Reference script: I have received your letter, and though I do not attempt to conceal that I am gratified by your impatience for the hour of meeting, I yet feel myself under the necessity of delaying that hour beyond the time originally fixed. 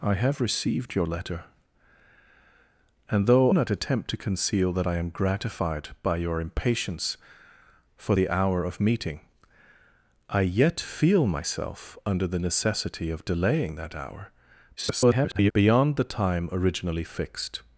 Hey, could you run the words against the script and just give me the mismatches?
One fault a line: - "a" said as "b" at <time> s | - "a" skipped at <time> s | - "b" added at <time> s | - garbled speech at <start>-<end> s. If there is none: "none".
- "I do" skipped at 3.5 s
- garbled speech at 14.8-15.5 s